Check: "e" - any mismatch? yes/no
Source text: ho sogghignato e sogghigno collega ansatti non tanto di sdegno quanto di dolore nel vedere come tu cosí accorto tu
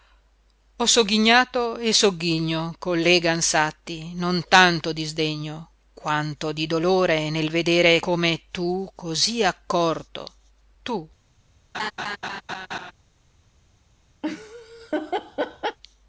no